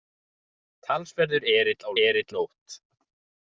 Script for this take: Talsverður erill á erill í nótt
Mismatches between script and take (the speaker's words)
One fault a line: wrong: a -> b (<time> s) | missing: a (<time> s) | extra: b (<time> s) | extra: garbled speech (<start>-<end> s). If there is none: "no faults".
no faults